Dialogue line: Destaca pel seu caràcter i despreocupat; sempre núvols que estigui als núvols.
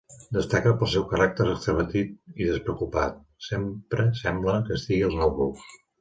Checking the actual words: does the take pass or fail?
fail